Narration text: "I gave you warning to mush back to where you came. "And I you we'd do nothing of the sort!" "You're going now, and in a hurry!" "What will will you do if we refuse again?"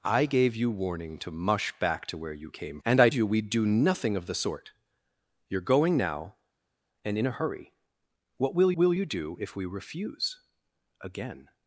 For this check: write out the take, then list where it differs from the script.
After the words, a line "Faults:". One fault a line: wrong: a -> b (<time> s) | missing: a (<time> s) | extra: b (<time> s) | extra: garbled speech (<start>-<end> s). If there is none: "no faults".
"I gave you warning to mush back to where you came. "And I you we'd do nothing of the sort!" "You're going now, and in a hurry!" "What will will you do if we refuse again?"
Faults:
no faults